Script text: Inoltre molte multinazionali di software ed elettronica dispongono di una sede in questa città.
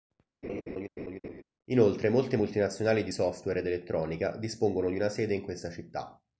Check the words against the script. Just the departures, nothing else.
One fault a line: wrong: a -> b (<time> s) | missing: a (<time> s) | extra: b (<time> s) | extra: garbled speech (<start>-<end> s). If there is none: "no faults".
no faults